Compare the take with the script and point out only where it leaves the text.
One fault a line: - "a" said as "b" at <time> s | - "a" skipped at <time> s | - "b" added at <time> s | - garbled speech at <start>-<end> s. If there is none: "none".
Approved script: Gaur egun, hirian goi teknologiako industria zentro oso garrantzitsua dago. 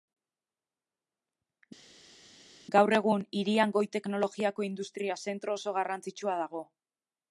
none